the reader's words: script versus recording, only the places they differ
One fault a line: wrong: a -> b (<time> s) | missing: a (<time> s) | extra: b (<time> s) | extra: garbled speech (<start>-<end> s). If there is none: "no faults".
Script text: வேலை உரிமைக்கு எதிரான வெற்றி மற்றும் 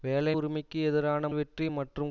no faults